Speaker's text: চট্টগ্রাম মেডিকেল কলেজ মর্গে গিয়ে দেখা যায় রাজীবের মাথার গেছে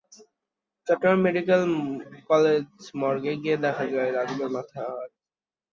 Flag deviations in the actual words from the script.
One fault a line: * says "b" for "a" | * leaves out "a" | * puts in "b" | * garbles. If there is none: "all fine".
all fine